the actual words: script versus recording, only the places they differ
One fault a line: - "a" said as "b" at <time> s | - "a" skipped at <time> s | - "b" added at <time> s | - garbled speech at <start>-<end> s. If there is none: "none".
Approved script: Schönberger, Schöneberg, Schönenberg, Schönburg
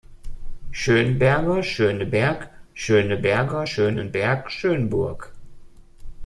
- "Schöneberger" added at 2.7 s